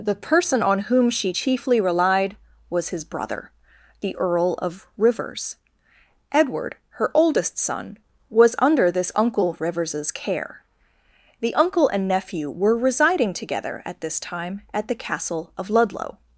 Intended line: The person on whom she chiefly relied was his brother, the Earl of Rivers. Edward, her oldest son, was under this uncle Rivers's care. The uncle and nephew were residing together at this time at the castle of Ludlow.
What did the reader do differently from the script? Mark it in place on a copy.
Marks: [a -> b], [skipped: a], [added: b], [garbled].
The person on whom she chiefly relied was his brother, the Earl of Rivers. Edward, her oldest son, was under this uncle Rivers's care. The uncle and nephew were residing together at this time at the castle of Ludlow.